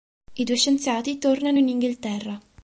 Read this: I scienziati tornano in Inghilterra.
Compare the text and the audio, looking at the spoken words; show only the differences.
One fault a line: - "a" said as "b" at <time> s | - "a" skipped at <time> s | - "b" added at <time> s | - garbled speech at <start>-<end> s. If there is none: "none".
- "due" added at 0.4 s